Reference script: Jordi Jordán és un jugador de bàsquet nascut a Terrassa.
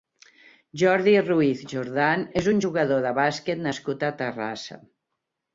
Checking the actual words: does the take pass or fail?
fail